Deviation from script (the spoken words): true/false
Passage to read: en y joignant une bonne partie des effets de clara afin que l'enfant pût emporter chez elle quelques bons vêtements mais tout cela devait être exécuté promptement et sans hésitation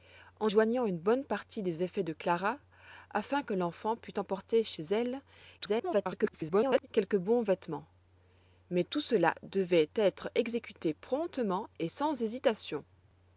true